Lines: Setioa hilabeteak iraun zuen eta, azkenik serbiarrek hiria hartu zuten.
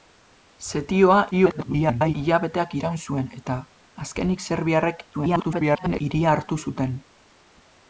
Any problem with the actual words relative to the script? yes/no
yes